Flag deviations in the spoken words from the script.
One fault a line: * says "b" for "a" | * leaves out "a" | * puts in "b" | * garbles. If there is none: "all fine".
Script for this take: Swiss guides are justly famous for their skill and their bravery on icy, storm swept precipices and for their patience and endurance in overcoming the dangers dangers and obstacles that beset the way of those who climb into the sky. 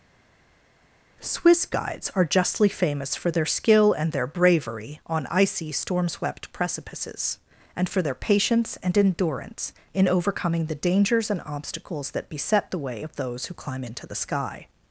* leaves out "dangers"